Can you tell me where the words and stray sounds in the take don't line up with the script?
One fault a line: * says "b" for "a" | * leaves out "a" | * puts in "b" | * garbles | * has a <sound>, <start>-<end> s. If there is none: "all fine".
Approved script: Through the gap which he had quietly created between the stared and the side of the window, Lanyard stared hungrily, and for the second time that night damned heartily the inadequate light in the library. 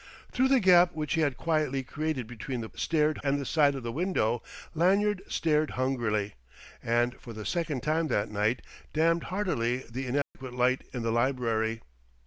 * has a dropout, 10.2-10.4 s